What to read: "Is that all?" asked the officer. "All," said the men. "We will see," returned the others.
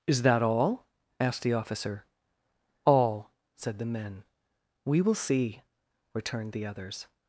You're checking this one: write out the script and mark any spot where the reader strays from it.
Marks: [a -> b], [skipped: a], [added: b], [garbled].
"Is that all?" asked the officer. "All," said the men. "We will see," returned the others.